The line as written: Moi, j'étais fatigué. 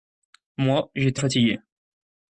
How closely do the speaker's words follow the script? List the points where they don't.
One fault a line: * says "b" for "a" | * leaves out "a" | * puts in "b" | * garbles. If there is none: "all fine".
all fine